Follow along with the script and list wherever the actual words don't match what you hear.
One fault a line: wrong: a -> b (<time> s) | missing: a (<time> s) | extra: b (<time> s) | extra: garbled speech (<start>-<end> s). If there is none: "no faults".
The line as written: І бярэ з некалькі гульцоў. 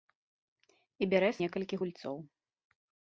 no faults